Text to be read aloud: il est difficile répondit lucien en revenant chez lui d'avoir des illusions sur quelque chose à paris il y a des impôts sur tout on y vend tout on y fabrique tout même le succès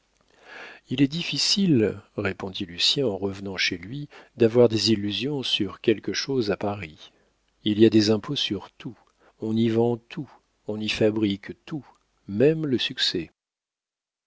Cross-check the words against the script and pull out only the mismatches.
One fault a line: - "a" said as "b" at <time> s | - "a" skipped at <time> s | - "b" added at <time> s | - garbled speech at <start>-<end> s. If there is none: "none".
none